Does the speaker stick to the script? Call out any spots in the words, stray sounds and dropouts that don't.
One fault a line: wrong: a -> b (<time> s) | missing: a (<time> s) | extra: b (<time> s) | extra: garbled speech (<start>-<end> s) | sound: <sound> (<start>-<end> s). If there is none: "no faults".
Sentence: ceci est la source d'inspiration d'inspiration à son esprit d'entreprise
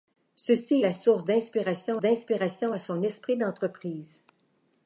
no faults